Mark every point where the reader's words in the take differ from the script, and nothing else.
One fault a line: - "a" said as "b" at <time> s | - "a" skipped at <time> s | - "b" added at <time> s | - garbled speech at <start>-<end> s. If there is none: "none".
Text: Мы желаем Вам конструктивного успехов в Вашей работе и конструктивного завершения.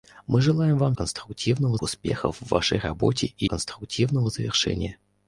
none